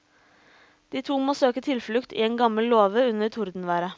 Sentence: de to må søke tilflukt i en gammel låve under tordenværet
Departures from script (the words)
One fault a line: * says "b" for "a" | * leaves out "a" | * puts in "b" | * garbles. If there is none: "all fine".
all fine